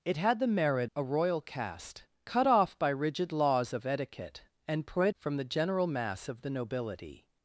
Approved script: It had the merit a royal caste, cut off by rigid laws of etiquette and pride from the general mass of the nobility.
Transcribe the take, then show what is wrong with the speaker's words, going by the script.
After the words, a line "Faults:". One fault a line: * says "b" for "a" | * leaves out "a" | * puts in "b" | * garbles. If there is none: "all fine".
It had the merit a royal caste, cut off by rigid laws of etiquette and pride from the general mass of the nobility.
Faults:
all fine